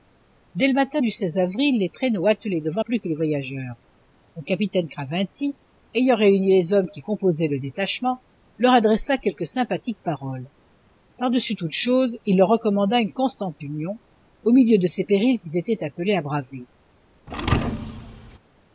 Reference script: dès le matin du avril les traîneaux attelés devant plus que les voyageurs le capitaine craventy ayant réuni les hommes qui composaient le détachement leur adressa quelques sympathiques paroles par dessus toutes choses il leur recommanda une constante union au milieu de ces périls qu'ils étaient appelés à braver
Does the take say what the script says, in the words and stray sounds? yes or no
no